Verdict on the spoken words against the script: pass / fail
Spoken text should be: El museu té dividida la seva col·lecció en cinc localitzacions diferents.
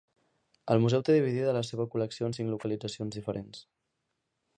pass